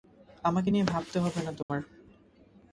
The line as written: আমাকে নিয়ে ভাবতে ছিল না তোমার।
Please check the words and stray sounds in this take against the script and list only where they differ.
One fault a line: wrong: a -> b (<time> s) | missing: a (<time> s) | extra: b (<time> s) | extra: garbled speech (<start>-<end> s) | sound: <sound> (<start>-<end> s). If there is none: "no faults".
wrong: ছিল -> হবে (1.2 s)
sound: dropout (1.6-1.7 s)